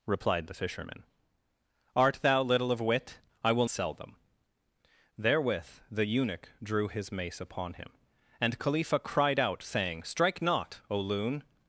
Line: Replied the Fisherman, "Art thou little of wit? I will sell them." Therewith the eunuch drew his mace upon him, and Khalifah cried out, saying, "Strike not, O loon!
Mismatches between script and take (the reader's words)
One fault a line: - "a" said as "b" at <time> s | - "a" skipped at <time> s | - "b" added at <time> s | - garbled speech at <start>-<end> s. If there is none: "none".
none